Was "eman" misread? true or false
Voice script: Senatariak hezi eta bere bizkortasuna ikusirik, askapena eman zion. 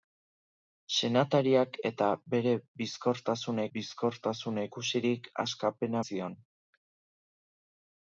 true